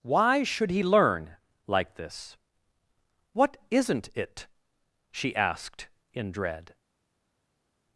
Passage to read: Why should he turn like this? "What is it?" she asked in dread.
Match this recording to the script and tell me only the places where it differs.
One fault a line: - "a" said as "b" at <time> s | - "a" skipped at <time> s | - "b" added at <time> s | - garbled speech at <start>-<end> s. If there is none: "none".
- "turn" said as "learn" at 0.8 s
- "is" said as "isn't" at 3.7 s